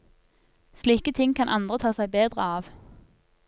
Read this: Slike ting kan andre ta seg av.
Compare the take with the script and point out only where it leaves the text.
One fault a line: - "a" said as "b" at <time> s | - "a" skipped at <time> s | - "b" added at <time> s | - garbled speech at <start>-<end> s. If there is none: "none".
- "bedre" added at 2.1 s